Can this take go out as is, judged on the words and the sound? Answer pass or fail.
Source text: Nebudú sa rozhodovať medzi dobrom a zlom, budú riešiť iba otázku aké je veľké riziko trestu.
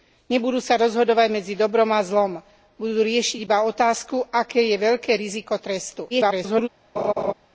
fail